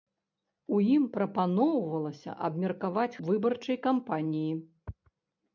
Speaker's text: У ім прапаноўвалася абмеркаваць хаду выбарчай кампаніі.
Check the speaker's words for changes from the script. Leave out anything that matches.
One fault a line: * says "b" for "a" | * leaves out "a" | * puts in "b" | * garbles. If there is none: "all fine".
* leaves out "хаду"